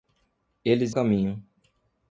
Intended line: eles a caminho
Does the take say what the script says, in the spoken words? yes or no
yes